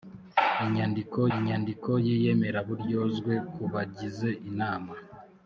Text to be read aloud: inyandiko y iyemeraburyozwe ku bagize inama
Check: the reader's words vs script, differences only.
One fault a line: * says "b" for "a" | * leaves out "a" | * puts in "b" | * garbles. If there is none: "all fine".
* puts in "inyandiko"